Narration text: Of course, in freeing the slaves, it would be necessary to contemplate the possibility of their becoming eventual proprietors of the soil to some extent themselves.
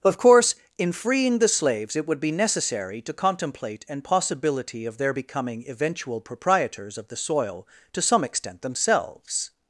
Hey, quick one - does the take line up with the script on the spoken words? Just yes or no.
no